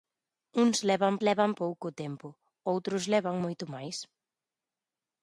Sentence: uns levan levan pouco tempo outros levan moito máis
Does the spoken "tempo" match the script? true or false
true